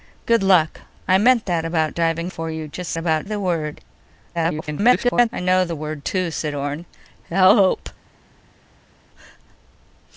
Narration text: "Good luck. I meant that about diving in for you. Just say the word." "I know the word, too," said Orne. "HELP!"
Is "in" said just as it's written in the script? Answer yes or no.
no